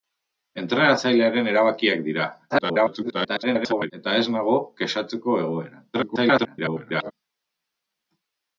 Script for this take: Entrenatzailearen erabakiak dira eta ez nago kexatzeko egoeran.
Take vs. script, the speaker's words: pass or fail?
fail